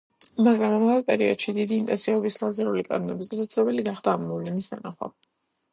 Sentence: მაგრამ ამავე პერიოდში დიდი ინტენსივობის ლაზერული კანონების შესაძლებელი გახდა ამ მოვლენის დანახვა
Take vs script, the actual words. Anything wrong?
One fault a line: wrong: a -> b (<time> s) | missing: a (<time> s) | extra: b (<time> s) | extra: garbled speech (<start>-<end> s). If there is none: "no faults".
no faults